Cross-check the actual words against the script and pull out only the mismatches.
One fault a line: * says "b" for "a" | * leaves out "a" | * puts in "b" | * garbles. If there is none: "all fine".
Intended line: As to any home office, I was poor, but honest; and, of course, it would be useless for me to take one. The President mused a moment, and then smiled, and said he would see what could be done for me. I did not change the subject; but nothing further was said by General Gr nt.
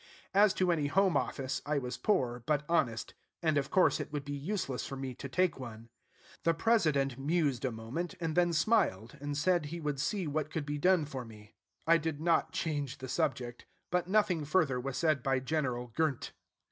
all fine